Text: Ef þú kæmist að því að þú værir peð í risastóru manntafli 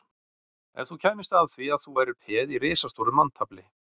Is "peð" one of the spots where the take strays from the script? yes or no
no